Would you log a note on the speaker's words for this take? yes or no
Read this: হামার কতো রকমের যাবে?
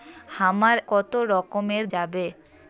no